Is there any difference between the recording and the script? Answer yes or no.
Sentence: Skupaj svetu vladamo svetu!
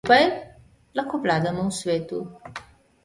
yes